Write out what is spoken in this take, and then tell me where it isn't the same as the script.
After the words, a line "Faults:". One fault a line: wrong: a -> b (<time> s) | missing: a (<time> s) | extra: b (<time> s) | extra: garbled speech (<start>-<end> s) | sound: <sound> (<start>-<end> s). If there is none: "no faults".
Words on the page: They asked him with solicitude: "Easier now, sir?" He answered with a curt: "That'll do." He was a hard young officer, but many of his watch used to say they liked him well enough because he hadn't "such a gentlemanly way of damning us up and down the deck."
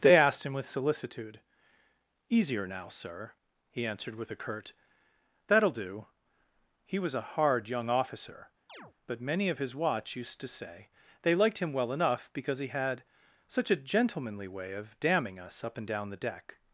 They asked him with solicitude: "Easier now, sir?" He answered with a curt: "That'll do." He was a hard young officer, but many of his watch used to say they liked him well enough because he had "such a gentlemanly way of damning us up and down the deck."
Faults:
sound: chirp (8.7-8.9 s)
wrong: hadn't -> had (12.7 s)